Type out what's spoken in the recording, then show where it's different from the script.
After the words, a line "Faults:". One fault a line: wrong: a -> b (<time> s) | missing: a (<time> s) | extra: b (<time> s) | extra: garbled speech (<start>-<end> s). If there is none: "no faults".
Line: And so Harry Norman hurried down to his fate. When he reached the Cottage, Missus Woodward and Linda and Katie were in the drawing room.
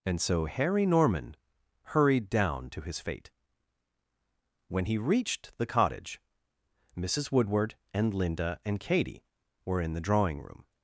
And so Harry Norman hurried down to his fate. When he reached the Cottage, Missus Woodward and Linda and Katie were in the drawing room.
Faults:
no faults